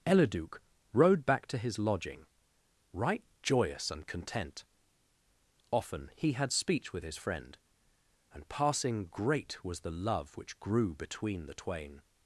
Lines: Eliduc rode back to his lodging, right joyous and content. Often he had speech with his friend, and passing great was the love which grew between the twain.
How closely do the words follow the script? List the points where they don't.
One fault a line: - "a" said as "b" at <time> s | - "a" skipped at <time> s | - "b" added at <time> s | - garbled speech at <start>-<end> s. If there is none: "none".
none